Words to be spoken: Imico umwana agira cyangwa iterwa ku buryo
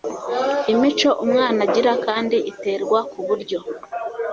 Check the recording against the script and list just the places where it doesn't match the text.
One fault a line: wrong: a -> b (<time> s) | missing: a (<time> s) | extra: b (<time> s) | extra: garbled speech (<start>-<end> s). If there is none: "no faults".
wrong: cyangwa -> kandi (2.0 s)